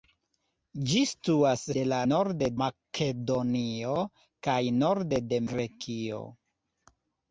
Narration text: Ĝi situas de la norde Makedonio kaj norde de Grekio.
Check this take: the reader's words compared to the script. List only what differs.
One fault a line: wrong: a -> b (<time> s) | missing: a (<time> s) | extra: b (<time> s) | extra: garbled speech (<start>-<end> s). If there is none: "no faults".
no faults